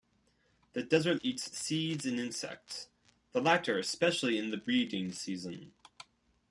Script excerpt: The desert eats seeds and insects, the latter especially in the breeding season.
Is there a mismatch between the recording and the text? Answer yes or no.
no